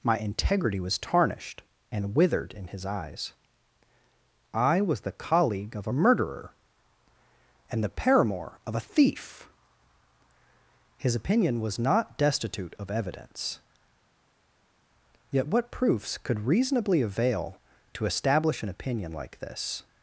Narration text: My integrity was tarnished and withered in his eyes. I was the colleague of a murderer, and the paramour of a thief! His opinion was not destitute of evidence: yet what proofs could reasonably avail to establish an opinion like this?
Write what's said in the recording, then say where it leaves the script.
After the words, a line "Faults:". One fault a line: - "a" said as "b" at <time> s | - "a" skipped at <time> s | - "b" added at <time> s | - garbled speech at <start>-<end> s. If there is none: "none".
My integrity was tarnished and withered in his eyes. I was the colleague of a murderer, and the paramour of a thief! His opinion was not destitute of evidence: yet what proofs could reasonably avail to establish an opinion like this?
Faults:
none